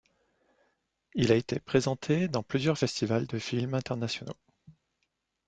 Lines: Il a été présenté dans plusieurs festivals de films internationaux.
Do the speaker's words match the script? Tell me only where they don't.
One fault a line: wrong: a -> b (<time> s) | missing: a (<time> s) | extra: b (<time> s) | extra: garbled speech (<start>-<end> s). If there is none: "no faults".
no faults